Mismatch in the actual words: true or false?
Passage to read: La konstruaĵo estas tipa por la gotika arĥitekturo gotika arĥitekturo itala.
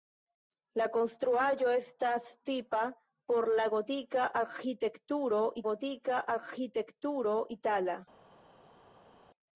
false